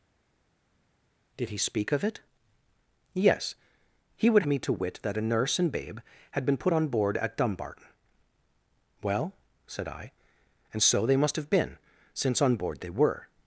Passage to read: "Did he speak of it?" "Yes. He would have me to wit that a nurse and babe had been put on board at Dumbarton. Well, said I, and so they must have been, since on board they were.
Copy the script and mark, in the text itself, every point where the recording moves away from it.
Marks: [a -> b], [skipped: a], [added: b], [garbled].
"Did he speak of it?" "Yes. He would [skipped: have] me to wit that a nurse and babe had been put on board at Dumbarton. Well, said I, and so they must have been, since on board they were.